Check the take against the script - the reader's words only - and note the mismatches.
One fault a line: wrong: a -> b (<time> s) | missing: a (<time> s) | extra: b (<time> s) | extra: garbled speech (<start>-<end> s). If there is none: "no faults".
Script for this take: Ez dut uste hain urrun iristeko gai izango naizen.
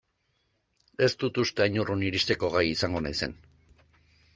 no faults